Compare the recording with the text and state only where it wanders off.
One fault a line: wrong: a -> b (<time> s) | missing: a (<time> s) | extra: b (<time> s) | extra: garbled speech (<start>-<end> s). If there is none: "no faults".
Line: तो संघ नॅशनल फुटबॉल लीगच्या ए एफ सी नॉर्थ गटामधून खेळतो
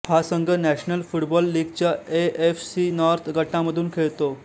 wrong: तो -> हा (0.0 s)